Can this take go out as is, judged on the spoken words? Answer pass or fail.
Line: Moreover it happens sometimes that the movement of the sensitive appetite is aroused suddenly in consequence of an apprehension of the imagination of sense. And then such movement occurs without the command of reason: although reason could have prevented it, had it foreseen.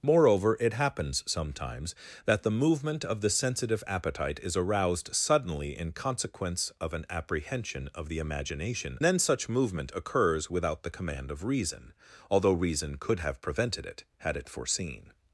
fail